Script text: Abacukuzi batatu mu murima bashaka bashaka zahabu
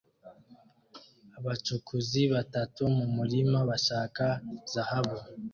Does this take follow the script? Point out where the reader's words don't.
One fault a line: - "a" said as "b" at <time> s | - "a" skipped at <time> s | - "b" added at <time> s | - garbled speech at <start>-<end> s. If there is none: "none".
- "bashaka" skipped at 4.2 s